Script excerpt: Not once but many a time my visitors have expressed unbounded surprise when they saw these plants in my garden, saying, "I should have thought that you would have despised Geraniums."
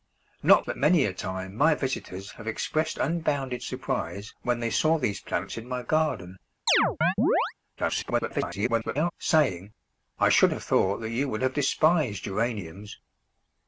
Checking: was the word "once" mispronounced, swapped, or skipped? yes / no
yes